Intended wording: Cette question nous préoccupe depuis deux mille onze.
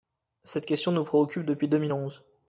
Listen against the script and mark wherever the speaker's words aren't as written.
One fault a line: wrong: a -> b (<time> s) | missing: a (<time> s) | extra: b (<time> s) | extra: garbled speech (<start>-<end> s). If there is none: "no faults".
no faults